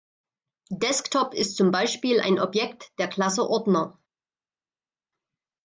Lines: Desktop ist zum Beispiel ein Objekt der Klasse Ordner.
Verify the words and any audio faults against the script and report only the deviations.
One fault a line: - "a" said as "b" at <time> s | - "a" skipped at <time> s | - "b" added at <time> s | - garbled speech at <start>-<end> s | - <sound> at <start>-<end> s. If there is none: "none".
none